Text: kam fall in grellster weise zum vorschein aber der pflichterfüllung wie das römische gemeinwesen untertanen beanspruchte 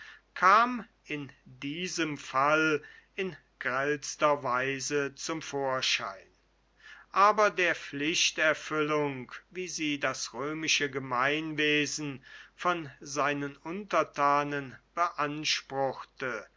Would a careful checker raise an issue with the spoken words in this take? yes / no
yes